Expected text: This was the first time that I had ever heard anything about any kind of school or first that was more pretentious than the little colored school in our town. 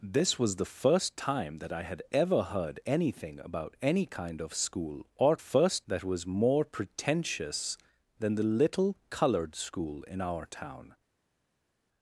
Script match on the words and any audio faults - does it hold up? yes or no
yes